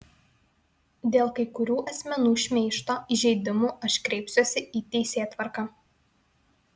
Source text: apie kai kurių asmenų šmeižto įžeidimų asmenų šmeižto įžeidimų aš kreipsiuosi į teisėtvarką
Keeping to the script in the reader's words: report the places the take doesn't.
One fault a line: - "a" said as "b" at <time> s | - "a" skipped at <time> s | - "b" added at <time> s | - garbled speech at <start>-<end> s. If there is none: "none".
- "apie" said as "dėl" at 1.1 s
- "asmenų šmeižto įžeidimų" skipped at 3.7 s